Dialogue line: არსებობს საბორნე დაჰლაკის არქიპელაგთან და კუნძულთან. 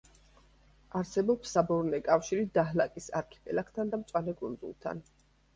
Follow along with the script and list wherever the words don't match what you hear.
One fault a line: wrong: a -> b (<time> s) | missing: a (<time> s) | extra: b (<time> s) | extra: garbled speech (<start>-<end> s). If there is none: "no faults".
extra: კავშირი (2.1 s)
extra: მწვანე (4.0 s)